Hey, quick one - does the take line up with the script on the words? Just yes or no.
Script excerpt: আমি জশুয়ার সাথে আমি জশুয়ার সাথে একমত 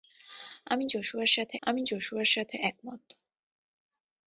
yes